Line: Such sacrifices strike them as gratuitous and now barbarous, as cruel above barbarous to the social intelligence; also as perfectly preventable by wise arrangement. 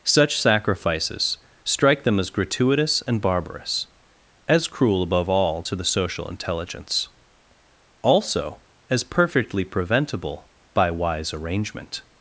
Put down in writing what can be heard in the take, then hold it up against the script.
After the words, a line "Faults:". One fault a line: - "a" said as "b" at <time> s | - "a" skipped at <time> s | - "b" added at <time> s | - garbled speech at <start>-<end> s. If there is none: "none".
Such sacrifices strike them as gratuitous and barbarous, as cruel above all to the social intelligence; also as perfectly preventable by wise arrangement.
Faults:
- "now" skipped at 3.2 s
- "barbarous" said as "all" at 5.3 s